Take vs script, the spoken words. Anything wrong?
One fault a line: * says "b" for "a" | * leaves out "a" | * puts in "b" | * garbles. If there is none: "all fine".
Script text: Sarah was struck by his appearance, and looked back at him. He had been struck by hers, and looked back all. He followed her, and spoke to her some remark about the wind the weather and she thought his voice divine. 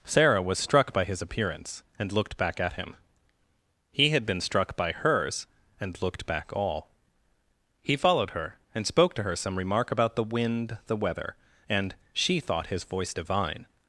all fine